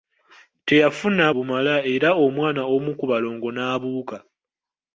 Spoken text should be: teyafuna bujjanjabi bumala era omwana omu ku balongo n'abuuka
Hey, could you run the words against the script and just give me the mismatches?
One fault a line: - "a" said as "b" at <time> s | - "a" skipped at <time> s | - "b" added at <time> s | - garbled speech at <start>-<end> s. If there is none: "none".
- "bujjanjabi" skipped at 1.2 s